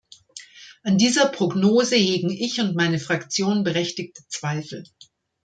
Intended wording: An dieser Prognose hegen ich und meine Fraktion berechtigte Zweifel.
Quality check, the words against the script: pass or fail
pass